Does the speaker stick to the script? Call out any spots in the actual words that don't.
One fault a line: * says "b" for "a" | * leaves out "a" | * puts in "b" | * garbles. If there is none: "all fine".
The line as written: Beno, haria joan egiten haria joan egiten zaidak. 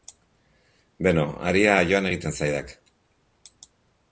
* leaves out "haria joan egiten"